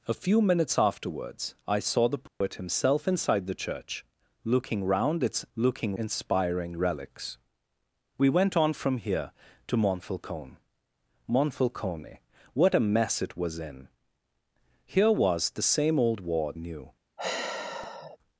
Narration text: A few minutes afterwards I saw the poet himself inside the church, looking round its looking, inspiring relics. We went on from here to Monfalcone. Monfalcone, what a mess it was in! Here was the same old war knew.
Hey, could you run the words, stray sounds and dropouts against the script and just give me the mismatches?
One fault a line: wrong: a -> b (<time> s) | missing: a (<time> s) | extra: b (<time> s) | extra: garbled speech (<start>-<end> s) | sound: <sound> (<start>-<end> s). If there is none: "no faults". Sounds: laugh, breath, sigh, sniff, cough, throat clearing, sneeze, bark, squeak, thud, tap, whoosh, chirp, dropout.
sound: dropout (2.3-2.4 s)
sound: sigh (17.2-18.2 s)